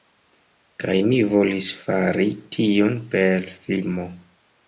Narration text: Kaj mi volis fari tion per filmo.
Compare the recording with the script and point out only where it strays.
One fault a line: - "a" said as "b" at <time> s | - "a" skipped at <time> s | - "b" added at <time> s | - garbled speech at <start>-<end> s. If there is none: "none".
none